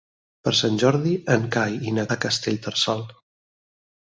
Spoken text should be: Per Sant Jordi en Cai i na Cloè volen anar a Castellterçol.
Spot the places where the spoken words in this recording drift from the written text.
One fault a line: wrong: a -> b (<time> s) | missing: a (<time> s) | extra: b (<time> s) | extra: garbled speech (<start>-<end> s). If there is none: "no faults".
missing: Cloè volen anar (2.1 s)